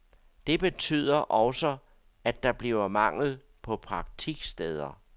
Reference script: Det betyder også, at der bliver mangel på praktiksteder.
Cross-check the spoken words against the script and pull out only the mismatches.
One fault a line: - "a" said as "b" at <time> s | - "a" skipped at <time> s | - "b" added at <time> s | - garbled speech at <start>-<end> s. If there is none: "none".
none